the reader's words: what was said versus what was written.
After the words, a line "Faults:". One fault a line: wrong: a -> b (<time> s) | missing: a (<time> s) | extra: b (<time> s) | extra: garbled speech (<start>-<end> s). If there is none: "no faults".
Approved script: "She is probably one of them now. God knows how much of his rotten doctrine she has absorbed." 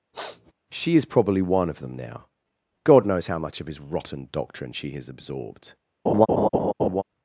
"She is probably one of them now. God knows how much of his rotten doctrine she has absorbed."
Faults:
no faults